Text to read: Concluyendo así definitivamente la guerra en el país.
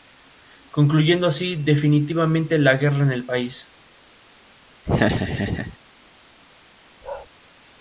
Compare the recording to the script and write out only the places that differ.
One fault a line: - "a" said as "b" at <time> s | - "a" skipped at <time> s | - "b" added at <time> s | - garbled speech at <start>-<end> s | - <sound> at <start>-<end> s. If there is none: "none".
- laugh at 4.9-5.8 s
- bark at 7.0-7.3 s